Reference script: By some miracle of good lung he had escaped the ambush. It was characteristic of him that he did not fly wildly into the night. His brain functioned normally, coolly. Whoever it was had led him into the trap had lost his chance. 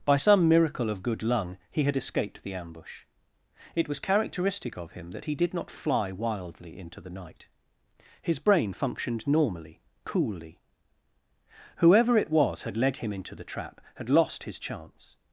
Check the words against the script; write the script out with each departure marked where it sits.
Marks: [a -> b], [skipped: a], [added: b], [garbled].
By some miracle of good lung he had escaped the ambush. It was characteristic of him that he did not fly wildly into the night. His brain functioned normally, coolly. Whoever it was had led him into the trap had lost his chance.